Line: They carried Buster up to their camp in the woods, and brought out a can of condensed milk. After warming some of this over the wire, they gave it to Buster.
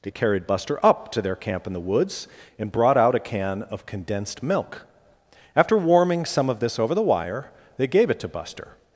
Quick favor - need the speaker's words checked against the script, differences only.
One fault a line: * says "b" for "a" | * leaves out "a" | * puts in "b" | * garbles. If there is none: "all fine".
all fine